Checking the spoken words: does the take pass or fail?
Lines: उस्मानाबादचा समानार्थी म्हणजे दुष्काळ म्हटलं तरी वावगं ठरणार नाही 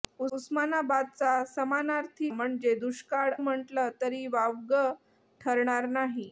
pass